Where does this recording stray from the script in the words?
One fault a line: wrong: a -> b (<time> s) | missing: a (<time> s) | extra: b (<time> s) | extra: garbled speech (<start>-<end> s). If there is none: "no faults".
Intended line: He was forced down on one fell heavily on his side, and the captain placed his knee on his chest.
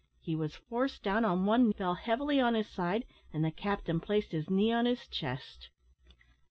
no faults